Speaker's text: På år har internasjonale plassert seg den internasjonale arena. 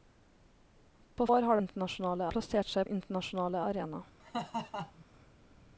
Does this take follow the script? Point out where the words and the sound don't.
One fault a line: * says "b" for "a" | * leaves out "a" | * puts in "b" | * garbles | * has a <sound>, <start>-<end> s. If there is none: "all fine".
* has a laugh, 4.2-5.0 s